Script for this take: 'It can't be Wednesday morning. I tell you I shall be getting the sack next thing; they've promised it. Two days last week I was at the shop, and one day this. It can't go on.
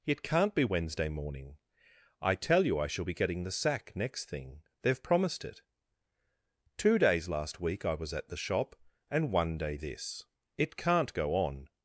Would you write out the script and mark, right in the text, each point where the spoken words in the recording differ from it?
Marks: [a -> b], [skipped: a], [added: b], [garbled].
'It can't be Wednesday morning. I tell you I shall be getting the sack next thing; they've promised it. Two days last week I was at the shop, and one day this. It can't go on.